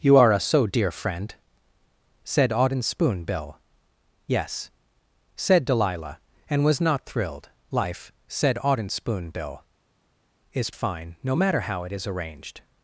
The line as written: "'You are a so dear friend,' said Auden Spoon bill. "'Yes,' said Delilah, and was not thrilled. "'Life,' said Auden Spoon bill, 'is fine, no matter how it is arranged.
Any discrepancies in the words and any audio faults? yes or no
no